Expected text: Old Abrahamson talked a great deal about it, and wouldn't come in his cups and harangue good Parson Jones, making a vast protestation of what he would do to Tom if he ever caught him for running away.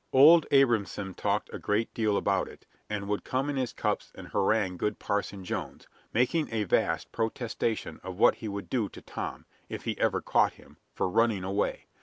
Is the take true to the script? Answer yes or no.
no